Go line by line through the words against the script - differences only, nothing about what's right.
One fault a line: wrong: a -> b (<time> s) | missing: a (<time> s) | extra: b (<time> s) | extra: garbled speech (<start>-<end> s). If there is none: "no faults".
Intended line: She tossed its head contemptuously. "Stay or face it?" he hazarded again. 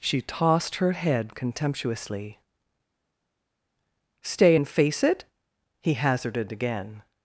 wrong: its -> her (0.8 s)
wrong: or -> and (4.5 s)